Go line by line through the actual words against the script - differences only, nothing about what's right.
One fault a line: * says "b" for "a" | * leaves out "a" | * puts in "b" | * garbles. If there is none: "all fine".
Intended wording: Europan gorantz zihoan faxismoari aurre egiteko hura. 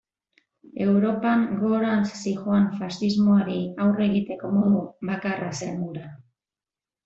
* puts in "modu bakarra zen"